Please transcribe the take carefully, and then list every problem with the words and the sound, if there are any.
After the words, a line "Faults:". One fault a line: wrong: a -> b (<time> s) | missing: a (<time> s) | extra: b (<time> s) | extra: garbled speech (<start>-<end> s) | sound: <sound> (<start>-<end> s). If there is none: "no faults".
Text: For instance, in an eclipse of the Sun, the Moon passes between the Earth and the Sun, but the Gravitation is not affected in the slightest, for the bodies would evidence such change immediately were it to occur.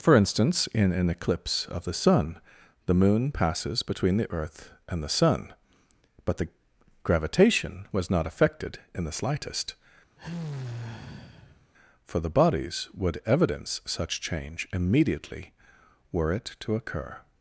For instance, in an eclipse of the Sun, the Moon passes between the Earth and the Sun, but the Gravitation was not affected in the slightest, for the bodies would evidence such change immediately were it to occur.
Faults:
wrong: is -> was (7.9 s)
sound: sigh (10.2-11.7 s)